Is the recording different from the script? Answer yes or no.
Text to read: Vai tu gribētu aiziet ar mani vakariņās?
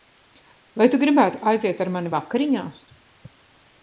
no